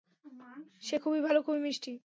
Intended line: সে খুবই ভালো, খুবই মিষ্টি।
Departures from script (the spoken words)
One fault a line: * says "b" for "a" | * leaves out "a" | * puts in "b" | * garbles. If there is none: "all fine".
all fine